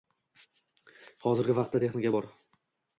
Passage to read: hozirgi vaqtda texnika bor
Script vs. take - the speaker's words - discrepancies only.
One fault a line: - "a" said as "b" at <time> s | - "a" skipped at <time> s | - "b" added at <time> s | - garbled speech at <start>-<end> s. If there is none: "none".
none